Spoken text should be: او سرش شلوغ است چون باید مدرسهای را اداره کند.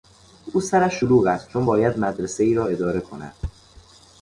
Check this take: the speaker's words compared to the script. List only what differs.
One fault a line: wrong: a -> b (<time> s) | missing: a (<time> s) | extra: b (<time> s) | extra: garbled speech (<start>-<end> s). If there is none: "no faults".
no faults